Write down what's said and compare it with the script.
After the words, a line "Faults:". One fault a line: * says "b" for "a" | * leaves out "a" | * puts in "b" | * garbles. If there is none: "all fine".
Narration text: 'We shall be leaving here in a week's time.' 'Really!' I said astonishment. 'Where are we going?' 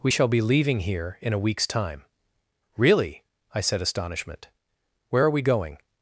'We shall be leaving here in a week's time.' 'Really!' I said astonishment. 'Where are we going?'
Faults:
all fine